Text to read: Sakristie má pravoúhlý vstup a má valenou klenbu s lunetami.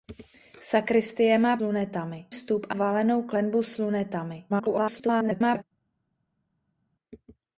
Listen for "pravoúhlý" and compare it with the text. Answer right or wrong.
wrong